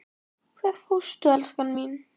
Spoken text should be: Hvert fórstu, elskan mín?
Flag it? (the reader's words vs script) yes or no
no